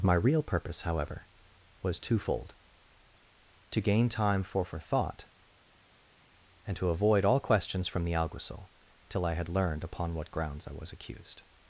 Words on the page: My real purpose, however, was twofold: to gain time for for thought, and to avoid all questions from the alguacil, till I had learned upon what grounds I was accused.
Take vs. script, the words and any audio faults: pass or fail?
pass